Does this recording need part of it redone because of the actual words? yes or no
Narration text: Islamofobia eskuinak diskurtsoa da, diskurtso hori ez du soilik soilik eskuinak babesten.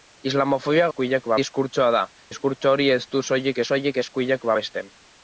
no